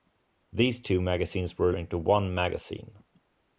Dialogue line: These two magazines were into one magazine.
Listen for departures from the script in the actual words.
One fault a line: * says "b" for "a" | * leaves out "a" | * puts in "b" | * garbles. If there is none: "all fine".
all fine